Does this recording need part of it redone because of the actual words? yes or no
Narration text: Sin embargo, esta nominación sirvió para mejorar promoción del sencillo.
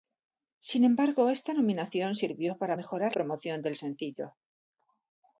no